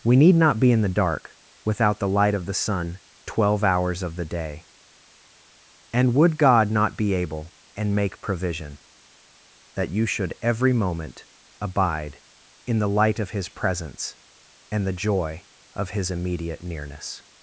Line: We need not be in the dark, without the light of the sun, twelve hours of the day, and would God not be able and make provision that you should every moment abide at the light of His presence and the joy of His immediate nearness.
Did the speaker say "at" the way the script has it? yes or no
no